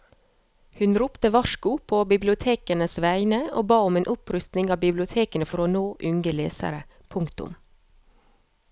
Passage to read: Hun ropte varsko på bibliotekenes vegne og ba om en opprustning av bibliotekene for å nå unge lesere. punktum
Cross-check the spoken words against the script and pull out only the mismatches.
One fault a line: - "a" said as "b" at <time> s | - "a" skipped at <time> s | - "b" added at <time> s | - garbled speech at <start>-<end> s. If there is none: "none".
none